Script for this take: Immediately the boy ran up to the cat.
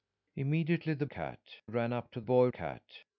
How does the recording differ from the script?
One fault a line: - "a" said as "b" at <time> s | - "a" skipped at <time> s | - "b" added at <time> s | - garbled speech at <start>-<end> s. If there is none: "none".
- "boy" said as "cat" at 1.0 s
- "the" said as "boy" at 2.2 s